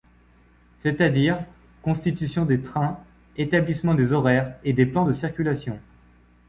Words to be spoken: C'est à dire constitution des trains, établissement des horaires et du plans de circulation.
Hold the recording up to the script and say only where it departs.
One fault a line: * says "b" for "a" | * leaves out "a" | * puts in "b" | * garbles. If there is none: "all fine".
* says "des" for "du"